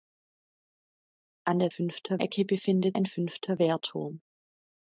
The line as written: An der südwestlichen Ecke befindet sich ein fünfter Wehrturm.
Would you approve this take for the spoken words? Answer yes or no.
no